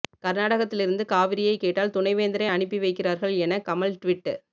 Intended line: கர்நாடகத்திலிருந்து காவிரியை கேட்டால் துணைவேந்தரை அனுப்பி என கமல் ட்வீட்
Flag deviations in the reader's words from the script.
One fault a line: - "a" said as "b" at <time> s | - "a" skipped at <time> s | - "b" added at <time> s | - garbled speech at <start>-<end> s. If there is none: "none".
- "வைக்கிறார்கள்" added at 2.8 s